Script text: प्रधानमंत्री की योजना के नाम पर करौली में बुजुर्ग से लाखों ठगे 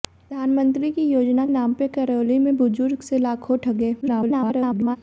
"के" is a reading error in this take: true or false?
true